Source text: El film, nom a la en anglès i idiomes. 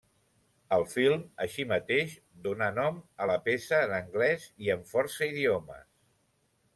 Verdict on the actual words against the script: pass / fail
fail